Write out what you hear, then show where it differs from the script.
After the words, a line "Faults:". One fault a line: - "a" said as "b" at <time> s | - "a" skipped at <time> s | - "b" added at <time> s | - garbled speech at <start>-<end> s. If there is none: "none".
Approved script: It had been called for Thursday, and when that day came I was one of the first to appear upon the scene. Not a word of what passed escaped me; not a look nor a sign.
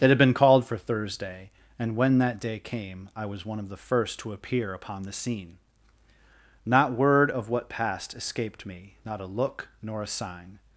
It had been called for Thursday, and when that day came I was one of the first to appear upon the scene. Not word of what passed escaped me; not a look nor a sign.
Faults:
- "a" skipped at 6.9 s